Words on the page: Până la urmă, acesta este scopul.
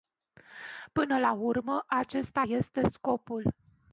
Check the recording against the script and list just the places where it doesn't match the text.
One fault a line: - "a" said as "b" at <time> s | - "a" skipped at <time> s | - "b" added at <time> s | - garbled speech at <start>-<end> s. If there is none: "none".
none